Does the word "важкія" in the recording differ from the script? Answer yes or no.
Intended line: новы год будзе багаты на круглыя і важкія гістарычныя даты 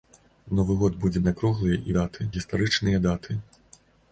yes